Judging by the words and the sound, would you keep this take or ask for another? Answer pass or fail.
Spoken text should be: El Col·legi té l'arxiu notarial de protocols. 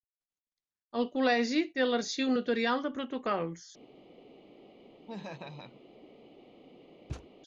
fail